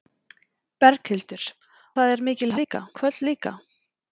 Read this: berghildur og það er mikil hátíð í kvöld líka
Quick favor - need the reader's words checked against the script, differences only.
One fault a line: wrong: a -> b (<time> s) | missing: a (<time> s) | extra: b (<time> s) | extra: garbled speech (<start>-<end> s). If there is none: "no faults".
missing: og (1.4 s)
wrong: hátíð -> líka (2.6 s)